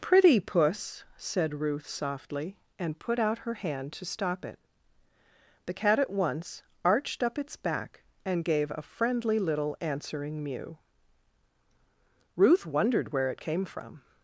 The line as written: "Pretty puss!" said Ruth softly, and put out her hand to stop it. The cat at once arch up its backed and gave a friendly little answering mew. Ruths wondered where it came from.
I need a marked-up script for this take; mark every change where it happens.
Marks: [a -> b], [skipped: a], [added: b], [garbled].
"Pretty puss!" said Ruth softly, and put out her hand to stop it. The cat at once [arch -> arched] up its [backed -> back] and gave a friendly little answering mew. [Ruths -> Ruth] wondered where it came from.